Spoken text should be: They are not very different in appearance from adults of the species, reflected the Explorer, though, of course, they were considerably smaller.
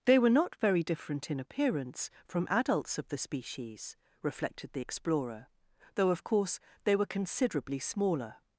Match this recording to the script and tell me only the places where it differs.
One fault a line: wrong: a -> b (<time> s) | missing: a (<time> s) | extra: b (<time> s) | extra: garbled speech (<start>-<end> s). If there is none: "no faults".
wrong: are -> were (0.2 s)